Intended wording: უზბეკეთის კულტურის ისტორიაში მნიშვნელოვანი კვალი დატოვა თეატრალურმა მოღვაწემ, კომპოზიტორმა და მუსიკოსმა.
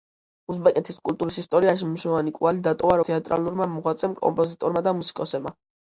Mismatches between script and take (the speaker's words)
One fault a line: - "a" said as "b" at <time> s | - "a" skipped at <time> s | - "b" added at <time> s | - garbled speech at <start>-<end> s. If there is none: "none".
none